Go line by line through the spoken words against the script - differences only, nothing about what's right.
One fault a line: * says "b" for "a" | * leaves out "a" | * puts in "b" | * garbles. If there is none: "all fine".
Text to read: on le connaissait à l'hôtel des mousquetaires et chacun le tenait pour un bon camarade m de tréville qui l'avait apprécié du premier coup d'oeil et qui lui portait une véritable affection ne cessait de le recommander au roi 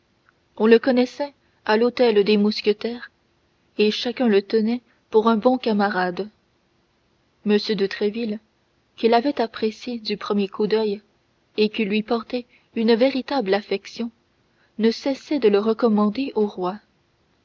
all fine